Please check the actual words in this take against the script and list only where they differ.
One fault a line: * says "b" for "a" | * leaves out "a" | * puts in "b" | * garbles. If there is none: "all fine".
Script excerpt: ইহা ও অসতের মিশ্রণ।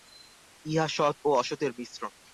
* puts in "সৎ"